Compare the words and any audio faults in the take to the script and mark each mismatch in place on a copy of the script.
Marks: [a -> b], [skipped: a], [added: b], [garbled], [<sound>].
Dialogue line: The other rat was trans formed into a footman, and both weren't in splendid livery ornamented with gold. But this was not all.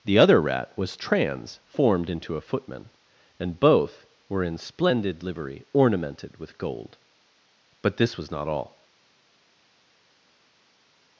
The other rat was trans formed into a footman, and both [weren't -> were] in splendid livery ornamented with gold. But this was not all.